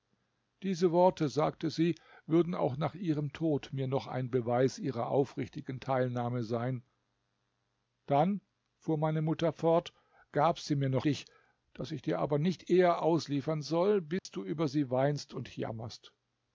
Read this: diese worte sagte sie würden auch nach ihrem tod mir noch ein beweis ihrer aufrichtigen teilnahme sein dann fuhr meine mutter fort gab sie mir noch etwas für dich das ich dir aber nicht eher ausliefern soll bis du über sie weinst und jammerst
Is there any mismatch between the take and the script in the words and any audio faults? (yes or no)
yes